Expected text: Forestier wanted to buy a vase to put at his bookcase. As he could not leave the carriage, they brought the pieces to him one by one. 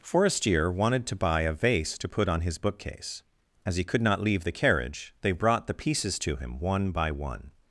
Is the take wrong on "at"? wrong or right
wrong